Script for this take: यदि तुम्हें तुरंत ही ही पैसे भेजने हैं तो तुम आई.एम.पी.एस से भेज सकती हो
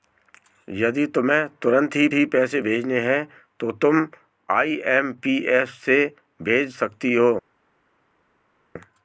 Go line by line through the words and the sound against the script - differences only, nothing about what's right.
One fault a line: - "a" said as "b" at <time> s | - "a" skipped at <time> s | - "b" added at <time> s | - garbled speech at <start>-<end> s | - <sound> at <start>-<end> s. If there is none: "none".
none